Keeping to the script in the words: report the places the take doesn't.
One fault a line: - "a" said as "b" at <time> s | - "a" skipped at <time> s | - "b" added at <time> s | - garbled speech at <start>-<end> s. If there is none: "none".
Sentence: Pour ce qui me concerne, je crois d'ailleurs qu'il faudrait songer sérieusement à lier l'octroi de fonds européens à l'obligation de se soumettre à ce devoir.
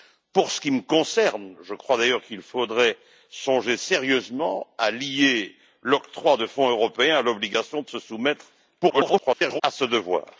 - garbled speech at 8.8-9.6 s